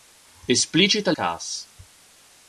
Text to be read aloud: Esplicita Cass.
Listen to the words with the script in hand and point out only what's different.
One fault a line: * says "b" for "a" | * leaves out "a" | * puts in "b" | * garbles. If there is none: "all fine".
all fine